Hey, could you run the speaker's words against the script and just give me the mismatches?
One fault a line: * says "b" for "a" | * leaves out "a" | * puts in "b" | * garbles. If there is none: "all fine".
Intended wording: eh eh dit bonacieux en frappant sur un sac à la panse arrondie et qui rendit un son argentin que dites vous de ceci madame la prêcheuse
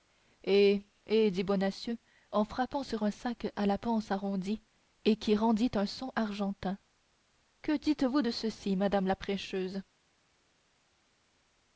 all fine